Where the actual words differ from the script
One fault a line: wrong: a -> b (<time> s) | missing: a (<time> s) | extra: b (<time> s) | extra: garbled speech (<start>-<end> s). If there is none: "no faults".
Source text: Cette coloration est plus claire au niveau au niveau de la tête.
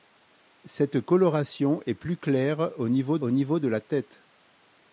no faults